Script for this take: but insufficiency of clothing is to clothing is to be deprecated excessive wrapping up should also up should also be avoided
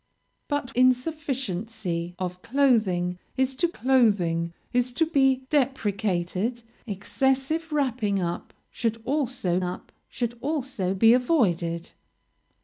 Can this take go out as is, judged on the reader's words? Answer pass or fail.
pass